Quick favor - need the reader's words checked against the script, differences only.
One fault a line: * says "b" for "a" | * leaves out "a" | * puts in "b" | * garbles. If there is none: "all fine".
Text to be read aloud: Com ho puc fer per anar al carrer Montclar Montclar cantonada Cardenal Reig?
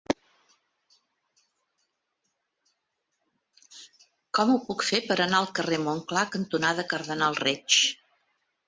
* leaves out "Montclar"